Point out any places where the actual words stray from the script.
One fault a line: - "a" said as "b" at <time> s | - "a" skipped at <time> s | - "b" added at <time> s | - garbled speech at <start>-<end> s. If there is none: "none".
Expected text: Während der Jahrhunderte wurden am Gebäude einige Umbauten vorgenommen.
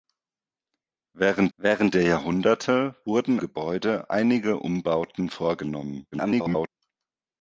- "während" added at 1.6 s
- "am" skipped at 3.4 s
- garbled speech at 6.1-6.7 s